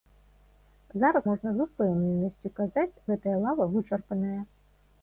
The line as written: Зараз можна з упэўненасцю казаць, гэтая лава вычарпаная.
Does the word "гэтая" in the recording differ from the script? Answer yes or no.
no